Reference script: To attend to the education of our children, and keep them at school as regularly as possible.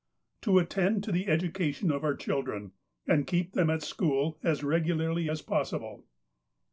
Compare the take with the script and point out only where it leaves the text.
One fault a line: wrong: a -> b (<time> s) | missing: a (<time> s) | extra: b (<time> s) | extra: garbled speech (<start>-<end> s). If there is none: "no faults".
no faults